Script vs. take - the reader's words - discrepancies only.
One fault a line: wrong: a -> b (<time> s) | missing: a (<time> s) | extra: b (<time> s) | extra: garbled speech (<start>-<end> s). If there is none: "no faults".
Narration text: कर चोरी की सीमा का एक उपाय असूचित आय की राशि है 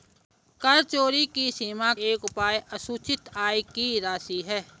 missing: का (1.9 s)